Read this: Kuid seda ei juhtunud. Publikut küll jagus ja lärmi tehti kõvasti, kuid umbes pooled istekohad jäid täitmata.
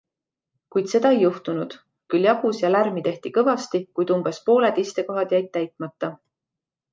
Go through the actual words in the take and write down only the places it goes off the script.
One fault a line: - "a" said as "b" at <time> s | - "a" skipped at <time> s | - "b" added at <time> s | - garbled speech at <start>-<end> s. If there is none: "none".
- "Publikut" skipped at 1.8 s